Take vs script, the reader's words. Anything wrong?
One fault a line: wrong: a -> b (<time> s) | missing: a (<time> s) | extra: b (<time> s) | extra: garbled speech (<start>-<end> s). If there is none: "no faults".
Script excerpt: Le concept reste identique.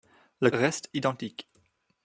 missing: concept (0.5 s)